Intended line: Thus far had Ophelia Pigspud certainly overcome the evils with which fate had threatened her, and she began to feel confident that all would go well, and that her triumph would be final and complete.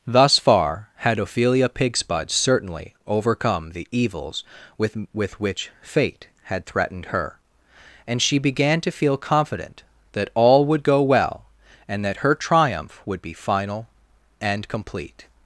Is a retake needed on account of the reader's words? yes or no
yes